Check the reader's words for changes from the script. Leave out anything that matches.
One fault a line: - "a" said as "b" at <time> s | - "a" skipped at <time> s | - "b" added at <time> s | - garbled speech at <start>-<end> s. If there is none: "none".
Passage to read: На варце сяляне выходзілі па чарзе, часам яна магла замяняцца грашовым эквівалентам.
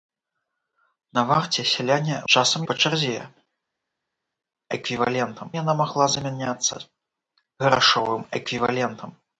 - "выходзілі" said as "часам" at 2.3 s
- "часам" said as "эквівалентам" at 4.8 s